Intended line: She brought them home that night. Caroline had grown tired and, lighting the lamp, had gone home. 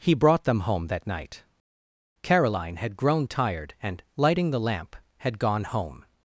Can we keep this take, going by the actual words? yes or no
no